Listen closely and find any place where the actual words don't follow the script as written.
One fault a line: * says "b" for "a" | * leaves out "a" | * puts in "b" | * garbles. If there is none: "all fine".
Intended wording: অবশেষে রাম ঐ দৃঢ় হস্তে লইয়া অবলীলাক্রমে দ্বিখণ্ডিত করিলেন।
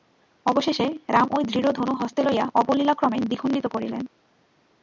* puts in "ধনু"